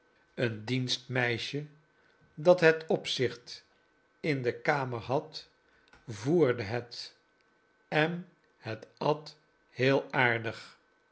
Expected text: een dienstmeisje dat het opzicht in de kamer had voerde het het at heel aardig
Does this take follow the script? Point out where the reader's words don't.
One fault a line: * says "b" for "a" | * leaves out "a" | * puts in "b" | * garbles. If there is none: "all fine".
* puts in "en"